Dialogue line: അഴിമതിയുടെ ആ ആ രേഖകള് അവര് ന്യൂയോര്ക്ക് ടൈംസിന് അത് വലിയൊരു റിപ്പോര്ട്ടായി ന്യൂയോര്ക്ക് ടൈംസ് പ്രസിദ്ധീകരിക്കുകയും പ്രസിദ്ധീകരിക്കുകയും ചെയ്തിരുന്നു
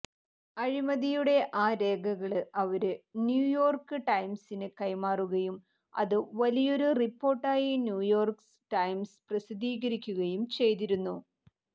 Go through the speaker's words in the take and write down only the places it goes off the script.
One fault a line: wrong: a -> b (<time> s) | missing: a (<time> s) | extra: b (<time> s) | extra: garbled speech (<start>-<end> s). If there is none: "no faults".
missing: ആ (1.7 s)
extra: കൈമാറുകയും (4.8 s)
missing: പ്രസിദ്ധീകരിക്കുകയും (10.4 s)